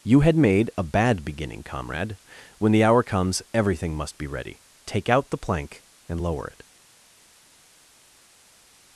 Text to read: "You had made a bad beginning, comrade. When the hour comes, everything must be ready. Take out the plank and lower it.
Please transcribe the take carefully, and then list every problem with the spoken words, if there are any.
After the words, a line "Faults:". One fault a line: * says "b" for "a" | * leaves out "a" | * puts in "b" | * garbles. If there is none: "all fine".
"You had made a bad beginning, comrade. When the hour comes, everything must be ready. Take out the plank and lower it.
Faults:
all fine